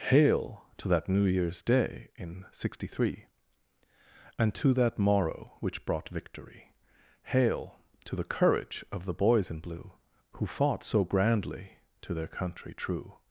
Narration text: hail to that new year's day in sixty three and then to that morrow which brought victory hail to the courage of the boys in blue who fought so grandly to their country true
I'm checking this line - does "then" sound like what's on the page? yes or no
no